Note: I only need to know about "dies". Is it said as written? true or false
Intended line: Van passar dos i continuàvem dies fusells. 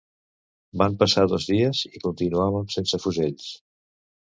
false